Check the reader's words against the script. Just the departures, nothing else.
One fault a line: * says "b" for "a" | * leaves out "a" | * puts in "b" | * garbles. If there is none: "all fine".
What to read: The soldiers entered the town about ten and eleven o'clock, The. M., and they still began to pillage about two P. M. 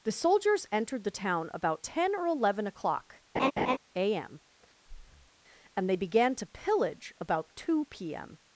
* says "or" for "and"
* says "A" for "The"
* leaves out "still"